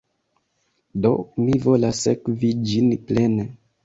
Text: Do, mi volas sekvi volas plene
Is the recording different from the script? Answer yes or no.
yes